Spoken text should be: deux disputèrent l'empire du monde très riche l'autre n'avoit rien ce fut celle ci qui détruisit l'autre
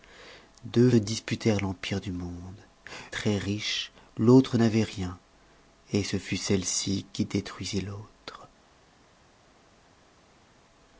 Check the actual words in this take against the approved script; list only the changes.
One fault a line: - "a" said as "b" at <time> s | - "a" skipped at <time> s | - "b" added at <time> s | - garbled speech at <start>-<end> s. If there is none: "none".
none